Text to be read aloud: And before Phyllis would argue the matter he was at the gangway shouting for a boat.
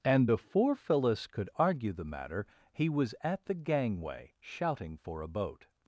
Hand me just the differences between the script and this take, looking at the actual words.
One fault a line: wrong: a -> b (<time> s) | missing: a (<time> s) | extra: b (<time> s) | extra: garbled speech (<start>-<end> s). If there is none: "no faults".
wrong: would -> could (1.3 s)